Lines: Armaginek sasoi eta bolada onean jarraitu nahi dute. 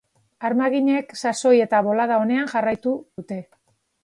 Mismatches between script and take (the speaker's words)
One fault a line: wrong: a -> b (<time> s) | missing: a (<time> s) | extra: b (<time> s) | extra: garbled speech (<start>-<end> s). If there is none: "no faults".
missing: nahi (3.0 s)